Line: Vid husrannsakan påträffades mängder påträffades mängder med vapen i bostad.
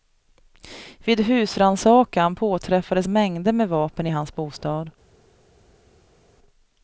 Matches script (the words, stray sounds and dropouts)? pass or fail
fail